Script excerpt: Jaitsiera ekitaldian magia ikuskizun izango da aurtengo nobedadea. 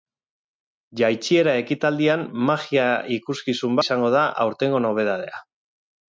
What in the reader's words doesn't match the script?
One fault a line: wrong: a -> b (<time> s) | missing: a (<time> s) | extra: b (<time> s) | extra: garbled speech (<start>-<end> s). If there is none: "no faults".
no faults